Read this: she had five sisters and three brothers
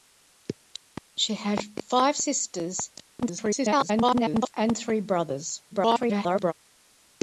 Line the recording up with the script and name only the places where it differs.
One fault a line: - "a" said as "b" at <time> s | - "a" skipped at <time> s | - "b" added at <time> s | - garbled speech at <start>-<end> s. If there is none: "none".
- garbled speech at 3.2-4.5 s
- garbled speech at 5.7-6.5 s